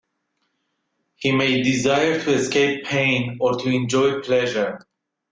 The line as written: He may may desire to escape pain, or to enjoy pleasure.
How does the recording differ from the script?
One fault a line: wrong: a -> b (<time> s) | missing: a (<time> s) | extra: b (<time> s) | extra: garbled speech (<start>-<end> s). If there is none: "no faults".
missing: may (1.6 s)